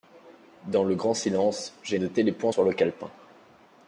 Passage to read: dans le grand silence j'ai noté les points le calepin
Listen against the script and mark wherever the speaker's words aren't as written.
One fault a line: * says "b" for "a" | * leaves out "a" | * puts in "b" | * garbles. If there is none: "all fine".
* puts in "sur"